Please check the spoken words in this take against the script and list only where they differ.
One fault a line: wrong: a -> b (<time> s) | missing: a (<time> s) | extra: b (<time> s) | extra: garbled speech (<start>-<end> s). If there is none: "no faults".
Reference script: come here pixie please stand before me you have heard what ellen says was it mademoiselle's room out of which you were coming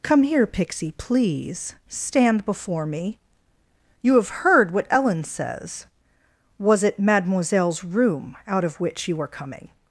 no faults